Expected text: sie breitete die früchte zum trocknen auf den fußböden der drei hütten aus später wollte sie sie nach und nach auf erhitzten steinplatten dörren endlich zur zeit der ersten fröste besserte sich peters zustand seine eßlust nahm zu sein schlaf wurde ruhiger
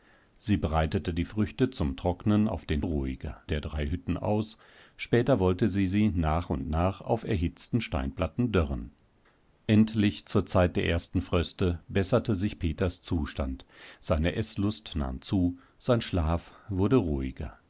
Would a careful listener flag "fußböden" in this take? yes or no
yes